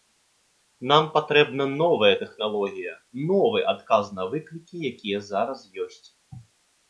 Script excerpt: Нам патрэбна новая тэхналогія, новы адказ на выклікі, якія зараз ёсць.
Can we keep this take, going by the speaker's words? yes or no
yes